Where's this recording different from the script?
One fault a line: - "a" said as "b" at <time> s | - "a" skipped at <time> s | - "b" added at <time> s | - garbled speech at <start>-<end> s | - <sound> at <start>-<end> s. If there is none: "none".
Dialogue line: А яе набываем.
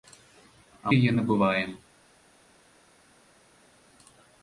none